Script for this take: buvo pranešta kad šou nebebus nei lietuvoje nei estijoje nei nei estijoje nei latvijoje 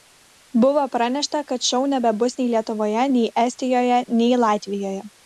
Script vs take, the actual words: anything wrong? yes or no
yes